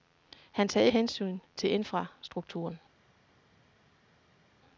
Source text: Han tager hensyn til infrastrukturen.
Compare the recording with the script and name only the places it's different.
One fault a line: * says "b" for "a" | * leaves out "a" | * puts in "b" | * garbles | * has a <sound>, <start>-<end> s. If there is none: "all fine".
all fine